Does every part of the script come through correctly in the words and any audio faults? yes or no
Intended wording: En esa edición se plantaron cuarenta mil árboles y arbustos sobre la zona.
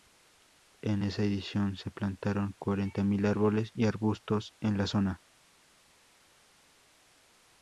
no